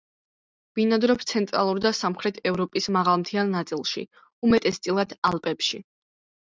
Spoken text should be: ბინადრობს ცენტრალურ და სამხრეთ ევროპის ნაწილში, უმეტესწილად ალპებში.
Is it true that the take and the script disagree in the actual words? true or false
true